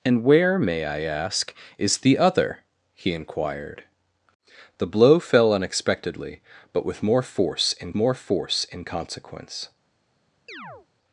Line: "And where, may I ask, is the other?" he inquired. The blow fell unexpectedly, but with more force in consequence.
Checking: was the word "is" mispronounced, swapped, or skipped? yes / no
no